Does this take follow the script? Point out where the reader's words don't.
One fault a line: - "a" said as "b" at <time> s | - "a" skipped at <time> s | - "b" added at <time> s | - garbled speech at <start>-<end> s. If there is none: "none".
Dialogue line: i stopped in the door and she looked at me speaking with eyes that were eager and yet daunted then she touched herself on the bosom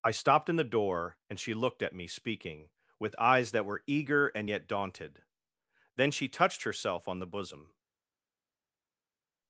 none